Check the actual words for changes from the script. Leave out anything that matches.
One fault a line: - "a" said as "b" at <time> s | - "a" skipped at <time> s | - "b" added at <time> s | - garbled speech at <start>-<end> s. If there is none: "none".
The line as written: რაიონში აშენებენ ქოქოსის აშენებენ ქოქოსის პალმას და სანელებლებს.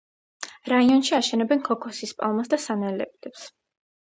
- "აშენებენ ქოქოსის" skipped at 2.2 s